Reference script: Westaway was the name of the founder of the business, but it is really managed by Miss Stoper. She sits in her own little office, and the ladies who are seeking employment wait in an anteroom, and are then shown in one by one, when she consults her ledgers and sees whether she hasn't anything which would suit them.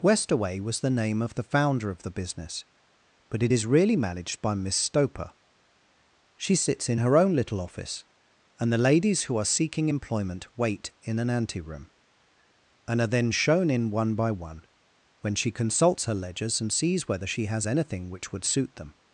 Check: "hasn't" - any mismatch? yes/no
yes